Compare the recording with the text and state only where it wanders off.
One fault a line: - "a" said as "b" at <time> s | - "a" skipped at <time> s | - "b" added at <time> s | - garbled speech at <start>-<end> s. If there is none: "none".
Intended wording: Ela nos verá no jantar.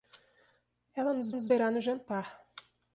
- "nos" added at 1.3 s